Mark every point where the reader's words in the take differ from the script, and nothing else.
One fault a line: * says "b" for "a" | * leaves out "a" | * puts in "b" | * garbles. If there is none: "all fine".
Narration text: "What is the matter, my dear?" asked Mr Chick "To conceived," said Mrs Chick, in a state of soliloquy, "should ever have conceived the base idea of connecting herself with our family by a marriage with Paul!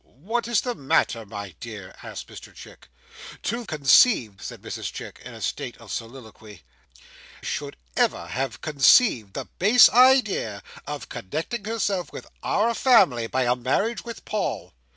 all fine